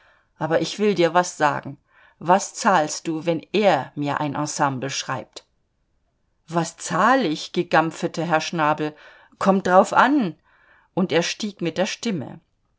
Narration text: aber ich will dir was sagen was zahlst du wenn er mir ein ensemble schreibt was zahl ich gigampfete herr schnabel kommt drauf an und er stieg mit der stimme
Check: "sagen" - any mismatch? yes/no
no